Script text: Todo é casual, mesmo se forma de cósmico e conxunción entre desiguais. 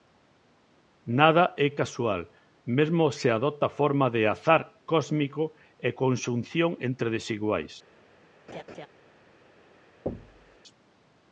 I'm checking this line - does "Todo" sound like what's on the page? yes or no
no